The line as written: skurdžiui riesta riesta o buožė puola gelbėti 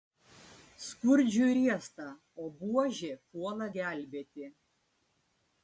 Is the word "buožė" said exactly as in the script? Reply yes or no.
yes